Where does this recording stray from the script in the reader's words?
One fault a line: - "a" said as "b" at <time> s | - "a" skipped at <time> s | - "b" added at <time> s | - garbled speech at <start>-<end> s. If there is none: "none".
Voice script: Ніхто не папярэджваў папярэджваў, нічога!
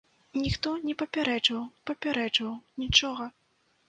none